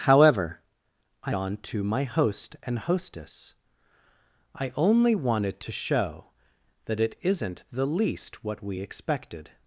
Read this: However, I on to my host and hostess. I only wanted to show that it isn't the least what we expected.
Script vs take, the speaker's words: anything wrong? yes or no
no